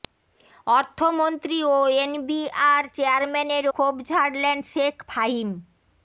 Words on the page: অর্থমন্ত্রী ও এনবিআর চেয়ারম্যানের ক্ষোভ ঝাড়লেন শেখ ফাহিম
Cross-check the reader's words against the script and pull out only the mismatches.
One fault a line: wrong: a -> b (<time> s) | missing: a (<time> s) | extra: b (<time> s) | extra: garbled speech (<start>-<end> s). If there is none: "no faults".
no faults